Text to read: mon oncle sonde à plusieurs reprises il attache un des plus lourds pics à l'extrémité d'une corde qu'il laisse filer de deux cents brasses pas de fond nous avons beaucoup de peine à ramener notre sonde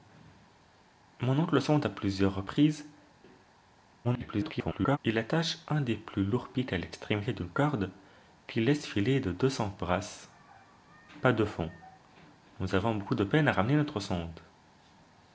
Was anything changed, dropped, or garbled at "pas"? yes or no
no